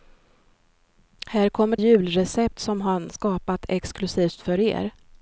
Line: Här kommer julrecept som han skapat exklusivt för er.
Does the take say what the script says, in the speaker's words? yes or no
yes